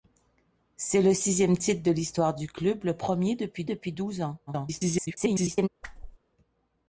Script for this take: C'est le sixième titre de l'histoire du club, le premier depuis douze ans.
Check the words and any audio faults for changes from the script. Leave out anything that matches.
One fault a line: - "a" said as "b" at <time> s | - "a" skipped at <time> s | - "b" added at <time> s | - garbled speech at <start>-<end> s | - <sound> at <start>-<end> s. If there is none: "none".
- "depuis" added at 3.6 s
- garbled speech at 4.5-5.7 s
- whoosh at 5.8-6.2 s